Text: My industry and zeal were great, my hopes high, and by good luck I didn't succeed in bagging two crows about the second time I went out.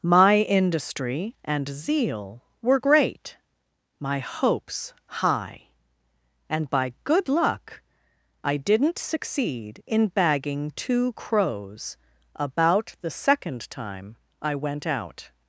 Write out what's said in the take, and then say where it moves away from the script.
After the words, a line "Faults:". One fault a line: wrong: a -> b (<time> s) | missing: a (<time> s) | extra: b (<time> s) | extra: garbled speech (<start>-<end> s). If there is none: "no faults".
My industry and zeal were great, my hopes high, and by good luck I didn't succeed in bagging two crows about the second time I went out.
Faults:
no faults